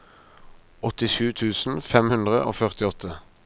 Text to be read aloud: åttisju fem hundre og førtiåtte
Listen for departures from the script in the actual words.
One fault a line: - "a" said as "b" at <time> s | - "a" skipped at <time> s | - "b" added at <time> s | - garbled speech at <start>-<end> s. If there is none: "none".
- "tusen" added at 1.4 s